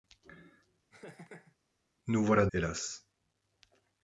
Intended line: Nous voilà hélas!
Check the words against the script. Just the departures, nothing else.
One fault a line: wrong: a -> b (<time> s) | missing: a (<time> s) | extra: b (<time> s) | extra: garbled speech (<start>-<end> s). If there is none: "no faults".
no faults